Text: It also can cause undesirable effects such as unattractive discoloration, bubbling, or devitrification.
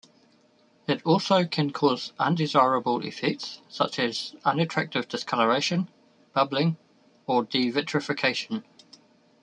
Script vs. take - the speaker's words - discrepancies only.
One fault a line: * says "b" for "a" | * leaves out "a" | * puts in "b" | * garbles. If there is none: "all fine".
all fine